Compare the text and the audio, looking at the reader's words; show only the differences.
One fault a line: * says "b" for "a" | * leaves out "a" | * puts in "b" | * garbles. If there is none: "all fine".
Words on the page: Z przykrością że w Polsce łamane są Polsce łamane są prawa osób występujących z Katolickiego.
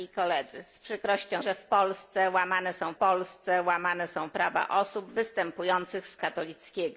all fine